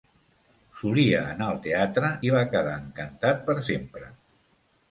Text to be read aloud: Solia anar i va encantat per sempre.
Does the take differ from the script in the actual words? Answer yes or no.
yes